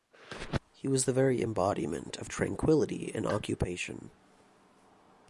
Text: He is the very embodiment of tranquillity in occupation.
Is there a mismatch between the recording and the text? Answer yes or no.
yes